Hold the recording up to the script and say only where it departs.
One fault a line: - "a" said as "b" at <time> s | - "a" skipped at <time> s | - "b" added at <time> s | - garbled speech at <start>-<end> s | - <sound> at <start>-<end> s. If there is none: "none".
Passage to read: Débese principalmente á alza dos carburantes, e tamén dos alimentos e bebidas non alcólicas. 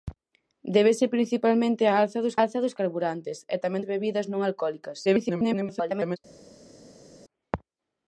- "alza dos" added at 2.4 s
- "dos alimentos" skipped at 3.8 s
- garbled speech at 5.1-6.2 s